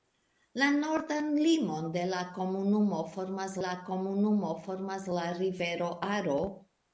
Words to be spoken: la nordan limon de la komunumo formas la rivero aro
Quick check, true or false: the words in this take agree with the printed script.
false